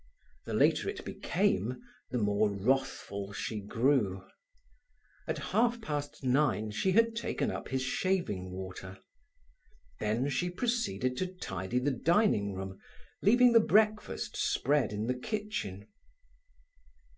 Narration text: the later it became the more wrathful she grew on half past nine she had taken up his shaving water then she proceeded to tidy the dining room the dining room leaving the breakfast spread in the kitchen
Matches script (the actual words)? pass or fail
fail